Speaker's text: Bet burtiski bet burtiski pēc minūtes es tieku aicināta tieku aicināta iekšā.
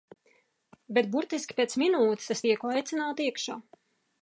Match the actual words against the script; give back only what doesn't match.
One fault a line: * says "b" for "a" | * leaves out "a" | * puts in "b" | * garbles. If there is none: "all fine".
* leaves out "bet burtiski"
* leaves out "tieku aicināta"